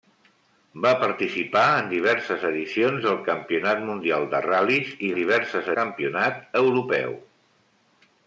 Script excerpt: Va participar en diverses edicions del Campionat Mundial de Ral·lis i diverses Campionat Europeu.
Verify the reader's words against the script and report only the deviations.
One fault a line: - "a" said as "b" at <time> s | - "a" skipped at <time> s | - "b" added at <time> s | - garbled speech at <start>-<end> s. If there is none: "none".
none